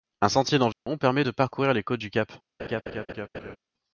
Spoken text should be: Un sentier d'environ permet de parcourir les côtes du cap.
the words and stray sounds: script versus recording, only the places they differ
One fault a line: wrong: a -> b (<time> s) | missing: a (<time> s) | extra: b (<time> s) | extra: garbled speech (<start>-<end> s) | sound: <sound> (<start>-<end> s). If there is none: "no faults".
sound: dropout (0.7-0.9 s)
sound: laugh (2.6-3.6 s)